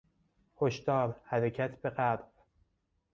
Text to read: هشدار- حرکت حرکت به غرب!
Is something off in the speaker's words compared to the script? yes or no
yes